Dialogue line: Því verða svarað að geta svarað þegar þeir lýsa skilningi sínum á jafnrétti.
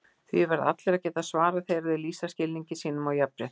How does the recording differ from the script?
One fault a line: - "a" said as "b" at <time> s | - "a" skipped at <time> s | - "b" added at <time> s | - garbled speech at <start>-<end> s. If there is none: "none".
- "svarað" said as "allir" at 0.7 s